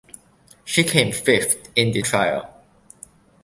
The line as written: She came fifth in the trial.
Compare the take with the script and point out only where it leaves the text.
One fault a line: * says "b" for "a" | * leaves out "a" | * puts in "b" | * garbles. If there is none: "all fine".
all fine